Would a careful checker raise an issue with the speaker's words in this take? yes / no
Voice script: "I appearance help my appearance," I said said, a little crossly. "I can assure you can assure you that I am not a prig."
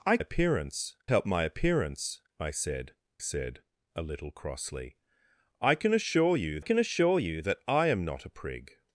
no